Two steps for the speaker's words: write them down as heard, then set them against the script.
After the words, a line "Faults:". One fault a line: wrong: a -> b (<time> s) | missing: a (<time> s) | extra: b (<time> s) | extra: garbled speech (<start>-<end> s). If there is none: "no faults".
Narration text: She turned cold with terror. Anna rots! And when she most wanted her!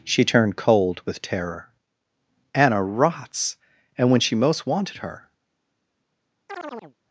She turned cold with terror. Anna rots! And when she most wanted her!
Faults:
no faults